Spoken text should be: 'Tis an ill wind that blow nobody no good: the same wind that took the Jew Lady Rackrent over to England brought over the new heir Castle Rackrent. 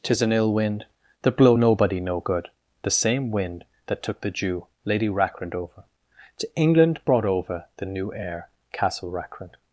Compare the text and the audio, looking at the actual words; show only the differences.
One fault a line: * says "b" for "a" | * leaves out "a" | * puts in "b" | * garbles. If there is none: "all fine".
all fine